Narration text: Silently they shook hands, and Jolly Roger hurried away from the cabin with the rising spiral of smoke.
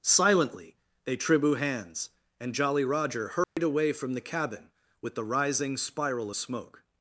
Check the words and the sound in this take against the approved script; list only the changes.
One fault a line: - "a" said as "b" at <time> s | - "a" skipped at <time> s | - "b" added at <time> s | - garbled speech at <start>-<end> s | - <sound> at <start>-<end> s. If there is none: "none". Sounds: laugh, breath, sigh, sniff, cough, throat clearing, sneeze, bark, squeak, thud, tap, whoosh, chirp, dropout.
- "shook" said as "tribu" at 1.1 s
- dropout at 3.4-3.6 s